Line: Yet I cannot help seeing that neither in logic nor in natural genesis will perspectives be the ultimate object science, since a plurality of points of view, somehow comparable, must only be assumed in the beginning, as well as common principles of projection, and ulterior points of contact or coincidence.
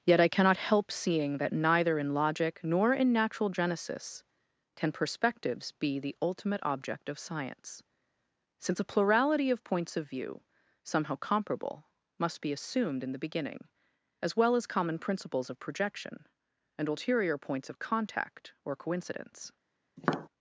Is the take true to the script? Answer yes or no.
no